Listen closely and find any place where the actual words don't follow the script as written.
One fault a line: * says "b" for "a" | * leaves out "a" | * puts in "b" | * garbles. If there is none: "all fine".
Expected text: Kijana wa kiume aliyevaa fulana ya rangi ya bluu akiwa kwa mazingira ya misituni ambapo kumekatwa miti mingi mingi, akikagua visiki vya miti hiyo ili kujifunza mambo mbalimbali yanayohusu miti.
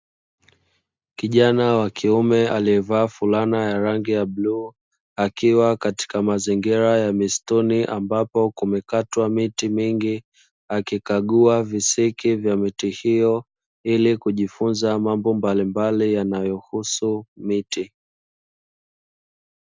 * says "katika" for "kwa"
* leaves out "mingi"